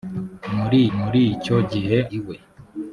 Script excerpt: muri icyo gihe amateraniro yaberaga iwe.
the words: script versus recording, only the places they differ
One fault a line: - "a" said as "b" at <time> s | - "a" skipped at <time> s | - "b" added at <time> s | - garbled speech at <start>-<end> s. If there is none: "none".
- "muri" added at 1.0 s
- "amateraniro yaberaga" skipped at 2.0 s